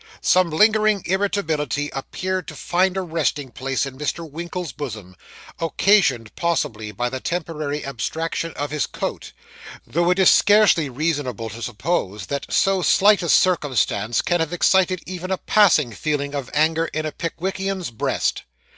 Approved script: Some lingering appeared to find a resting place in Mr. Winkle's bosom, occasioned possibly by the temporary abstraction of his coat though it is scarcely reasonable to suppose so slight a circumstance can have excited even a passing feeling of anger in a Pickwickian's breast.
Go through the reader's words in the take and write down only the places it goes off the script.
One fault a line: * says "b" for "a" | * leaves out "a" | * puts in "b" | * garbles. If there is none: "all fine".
* puts in "irritability"
* puts in "that"